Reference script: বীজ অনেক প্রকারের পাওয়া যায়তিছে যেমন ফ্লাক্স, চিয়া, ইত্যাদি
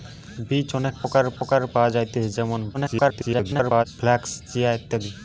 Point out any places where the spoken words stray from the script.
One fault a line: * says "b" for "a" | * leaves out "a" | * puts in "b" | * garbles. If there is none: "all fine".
* puts in "প্রকারের"
* garbles